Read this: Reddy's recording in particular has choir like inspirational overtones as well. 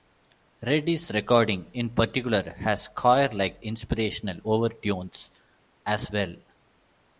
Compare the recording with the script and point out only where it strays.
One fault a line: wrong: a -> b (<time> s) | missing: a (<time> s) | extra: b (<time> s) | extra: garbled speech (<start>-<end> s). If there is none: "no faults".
no faults